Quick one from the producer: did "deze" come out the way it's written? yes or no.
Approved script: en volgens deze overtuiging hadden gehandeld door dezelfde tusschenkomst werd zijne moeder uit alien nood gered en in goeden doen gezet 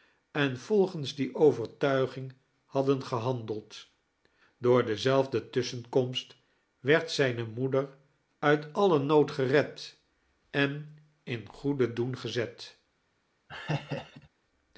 no